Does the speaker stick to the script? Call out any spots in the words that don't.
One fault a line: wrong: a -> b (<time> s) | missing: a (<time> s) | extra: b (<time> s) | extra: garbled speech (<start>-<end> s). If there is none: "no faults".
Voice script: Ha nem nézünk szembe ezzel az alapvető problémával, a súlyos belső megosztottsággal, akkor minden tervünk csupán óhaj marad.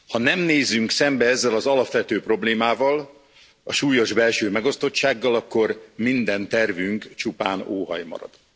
no faults